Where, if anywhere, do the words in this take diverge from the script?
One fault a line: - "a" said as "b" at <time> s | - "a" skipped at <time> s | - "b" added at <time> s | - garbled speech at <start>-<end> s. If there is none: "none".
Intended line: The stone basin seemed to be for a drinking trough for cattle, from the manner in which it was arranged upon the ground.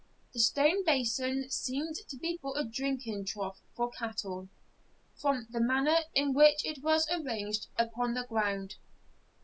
none